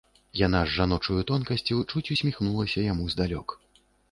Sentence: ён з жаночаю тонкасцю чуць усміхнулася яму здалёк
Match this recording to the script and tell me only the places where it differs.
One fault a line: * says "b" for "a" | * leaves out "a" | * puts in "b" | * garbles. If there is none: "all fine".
* says "яна" for "ён"